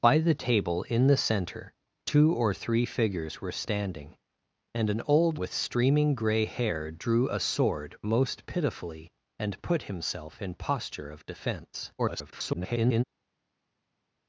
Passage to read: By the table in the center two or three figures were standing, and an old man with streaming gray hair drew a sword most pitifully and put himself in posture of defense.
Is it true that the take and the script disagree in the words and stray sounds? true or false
true